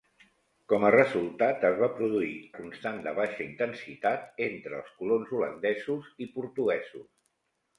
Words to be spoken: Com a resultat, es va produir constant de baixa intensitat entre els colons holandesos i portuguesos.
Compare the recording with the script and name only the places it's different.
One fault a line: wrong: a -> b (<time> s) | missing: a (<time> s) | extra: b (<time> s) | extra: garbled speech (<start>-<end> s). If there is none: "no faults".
no faults